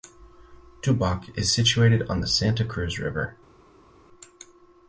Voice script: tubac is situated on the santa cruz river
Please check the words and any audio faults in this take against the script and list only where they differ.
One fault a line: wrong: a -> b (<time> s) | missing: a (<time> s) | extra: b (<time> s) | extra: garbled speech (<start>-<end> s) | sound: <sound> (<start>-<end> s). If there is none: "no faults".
no faults